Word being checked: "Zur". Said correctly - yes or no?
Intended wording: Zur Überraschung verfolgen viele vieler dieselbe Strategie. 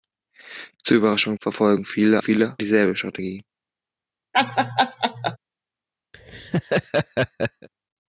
yes